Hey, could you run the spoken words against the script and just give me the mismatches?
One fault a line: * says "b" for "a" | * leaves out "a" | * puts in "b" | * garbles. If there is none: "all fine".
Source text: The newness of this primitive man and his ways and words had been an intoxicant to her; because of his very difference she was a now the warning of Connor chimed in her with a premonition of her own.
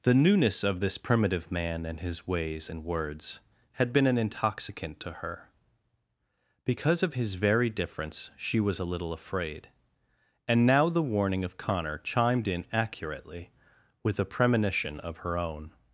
* puts in "little afraid and"
* says "accurately" for "her"